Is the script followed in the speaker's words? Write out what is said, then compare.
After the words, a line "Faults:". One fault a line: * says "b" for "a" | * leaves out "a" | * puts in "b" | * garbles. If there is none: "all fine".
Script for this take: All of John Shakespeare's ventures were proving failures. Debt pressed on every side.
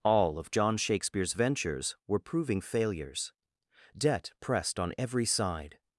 All of John Shakespeare's ventures were proving failures. Debt pressed on every side.
Faults:
all fine